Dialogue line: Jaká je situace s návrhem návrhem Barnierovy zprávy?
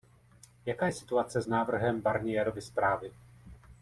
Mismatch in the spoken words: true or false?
true